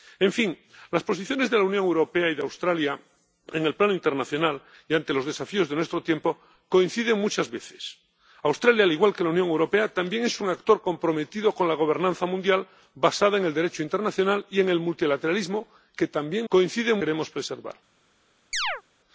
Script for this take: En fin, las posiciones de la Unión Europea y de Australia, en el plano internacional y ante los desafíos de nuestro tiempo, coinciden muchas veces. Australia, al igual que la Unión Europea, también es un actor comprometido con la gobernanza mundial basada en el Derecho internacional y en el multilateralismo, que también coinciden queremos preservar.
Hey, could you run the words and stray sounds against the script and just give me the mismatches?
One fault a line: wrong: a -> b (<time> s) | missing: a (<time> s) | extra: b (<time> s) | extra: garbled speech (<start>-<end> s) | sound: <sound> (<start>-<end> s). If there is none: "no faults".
sound: chirp (18.5-18.8 s)